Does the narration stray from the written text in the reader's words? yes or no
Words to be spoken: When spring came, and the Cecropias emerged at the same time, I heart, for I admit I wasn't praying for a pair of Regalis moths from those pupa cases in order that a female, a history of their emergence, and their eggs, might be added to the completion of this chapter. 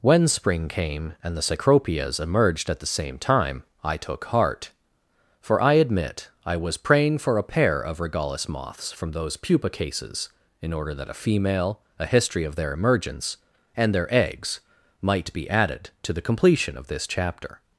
yes